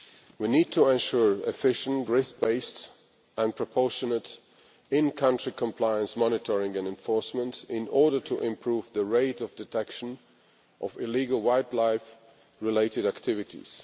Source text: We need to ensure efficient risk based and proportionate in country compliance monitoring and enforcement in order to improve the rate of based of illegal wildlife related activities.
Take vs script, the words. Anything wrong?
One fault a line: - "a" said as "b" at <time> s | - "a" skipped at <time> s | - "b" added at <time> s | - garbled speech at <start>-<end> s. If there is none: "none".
- "based" said as "detection" at 9.5 s